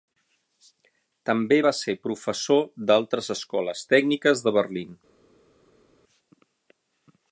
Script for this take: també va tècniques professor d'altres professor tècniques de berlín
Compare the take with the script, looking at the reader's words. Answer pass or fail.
fail